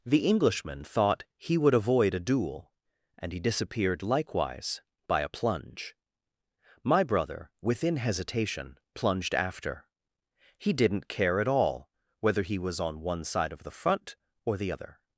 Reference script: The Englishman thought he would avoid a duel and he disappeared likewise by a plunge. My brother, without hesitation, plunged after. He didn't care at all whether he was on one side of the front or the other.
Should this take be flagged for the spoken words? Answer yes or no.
yes